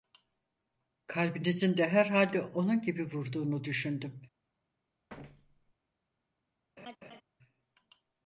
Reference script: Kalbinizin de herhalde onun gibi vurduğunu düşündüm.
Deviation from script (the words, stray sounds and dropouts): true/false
true